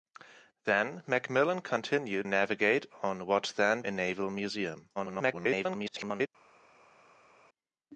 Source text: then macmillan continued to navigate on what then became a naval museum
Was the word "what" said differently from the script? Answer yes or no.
no